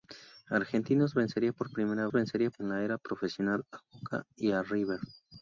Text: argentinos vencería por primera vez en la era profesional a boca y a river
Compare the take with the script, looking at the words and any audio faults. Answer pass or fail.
fail